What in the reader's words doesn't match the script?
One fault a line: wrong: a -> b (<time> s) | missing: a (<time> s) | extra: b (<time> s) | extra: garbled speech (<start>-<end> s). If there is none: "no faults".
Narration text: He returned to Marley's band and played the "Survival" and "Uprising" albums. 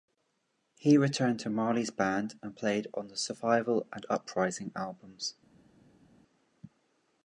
extra: on (2.9 s)